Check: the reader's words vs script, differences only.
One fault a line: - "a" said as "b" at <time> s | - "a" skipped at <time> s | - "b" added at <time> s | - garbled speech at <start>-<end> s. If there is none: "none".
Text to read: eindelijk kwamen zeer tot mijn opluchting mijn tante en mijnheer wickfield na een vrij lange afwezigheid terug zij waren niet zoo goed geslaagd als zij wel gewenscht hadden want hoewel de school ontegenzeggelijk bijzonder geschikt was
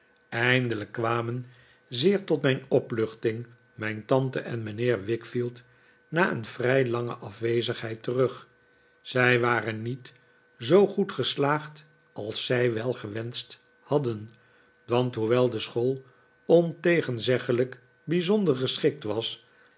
none